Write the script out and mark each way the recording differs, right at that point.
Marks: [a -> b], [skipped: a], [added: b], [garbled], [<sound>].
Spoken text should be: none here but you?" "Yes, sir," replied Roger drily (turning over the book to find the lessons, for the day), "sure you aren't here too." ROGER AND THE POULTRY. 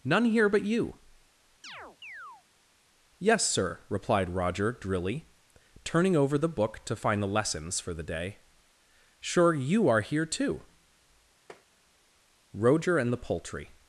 none here but you?" [chirp] "Yes, sir," replied Roger drily (turning over the book to find the lessons, for the day), "sure you [aren't -> are] here too." [tap] ROGER AND THE POULTRY.